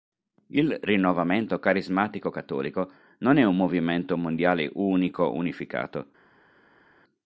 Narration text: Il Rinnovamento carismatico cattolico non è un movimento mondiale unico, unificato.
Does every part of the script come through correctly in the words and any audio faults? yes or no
yes